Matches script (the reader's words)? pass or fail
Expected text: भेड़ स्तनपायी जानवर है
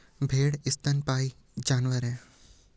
pass